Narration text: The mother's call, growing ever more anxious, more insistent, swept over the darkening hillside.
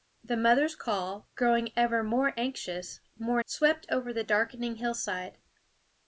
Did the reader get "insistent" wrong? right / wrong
wrong